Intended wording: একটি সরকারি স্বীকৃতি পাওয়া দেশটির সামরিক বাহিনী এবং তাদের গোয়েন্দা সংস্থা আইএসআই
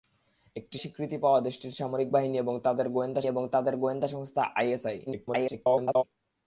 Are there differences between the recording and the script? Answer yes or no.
yes